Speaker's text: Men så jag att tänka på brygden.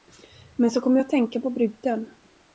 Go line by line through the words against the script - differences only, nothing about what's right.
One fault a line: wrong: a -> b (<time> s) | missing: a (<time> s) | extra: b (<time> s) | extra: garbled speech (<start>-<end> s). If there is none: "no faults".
extra: kom (0.8 s)